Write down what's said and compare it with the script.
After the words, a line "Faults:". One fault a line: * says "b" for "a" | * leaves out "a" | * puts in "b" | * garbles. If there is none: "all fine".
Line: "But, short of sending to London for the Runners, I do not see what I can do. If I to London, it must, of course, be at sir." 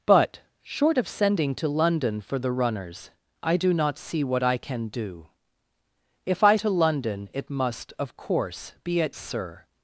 "But, short of sending to London for the Runners, I do not see what I can do. If I to London, it must, of course, be at sir."
Faults:
all fine